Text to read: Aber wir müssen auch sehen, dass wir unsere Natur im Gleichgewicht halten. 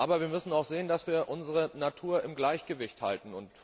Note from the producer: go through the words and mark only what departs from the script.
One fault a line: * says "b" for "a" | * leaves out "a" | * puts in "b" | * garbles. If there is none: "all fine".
all fine